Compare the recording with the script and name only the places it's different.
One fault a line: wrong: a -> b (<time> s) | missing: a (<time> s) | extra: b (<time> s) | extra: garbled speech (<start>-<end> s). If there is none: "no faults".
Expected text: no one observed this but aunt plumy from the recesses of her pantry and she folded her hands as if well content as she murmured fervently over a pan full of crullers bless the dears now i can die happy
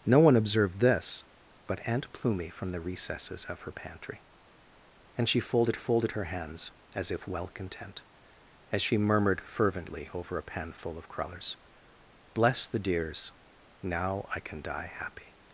extra: folded (5.7 s)